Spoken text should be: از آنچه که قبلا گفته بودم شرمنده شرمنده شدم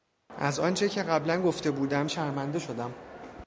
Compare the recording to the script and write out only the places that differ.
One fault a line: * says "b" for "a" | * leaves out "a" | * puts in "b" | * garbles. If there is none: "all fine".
* leaves out "شرمنده"